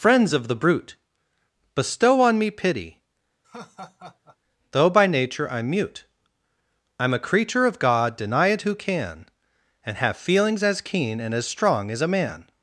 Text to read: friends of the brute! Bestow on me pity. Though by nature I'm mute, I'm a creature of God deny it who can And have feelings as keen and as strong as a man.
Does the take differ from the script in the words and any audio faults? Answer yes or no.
yes